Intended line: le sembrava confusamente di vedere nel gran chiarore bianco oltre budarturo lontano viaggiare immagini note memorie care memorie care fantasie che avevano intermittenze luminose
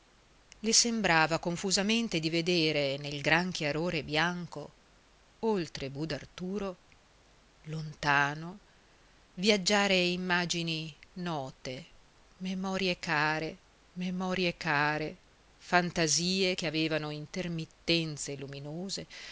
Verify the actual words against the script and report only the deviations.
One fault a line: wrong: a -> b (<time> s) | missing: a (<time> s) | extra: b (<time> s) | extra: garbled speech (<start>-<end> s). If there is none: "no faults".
no faults